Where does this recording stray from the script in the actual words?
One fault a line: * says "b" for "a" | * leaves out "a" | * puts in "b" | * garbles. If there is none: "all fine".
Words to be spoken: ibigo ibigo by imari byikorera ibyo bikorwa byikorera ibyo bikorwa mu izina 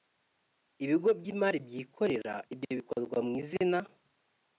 * leaves out "ibigo"
* leaves out "byikorera ibyo bikorwa"